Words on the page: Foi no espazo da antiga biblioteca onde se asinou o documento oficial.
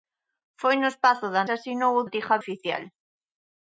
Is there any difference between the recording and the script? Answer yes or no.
yes